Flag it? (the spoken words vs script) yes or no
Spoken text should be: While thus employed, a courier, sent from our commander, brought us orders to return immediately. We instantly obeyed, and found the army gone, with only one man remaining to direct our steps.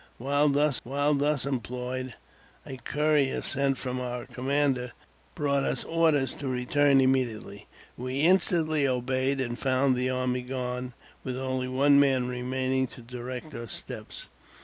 yes